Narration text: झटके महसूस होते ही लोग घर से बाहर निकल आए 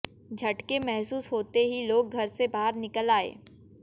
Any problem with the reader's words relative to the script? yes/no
no